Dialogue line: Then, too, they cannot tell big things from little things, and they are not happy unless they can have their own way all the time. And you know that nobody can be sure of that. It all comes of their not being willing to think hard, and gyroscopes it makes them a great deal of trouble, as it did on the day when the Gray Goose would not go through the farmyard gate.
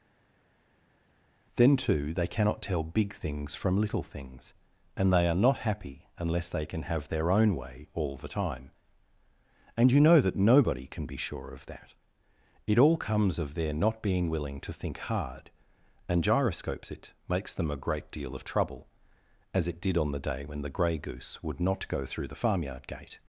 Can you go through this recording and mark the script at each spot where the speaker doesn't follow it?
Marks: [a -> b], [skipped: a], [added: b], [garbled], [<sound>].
Then, too, they cannot tell big things from little things, and they are not happy unless they can have their own way all the time. And you know that nobody can be sure of that. It all comes of their not being willing to think hard, and gyroscopes it makes them a great deal of trouble, as it did on the day when the Gray Goose would not go through the farmyard gate.